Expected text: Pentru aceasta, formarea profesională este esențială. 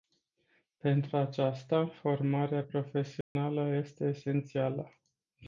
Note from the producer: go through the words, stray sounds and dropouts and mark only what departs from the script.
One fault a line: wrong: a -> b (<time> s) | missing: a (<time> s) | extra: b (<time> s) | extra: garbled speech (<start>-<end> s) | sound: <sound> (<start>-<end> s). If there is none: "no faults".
sound: dropout (3.2-3.4 s)